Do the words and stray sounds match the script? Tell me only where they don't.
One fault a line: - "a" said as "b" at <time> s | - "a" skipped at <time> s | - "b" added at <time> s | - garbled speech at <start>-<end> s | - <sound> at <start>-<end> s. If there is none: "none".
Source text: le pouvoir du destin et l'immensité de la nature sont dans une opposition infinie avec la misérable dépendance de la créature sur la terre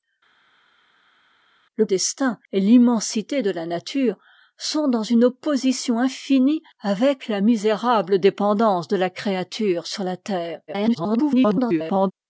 - "pouvoir du" skipped at 1.9 s
- garbled speech at 10.7-12.1 s